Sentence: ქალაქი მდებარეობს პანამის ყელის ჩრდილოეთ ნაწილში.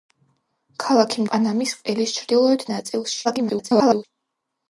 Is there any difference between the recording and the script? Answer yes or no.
yes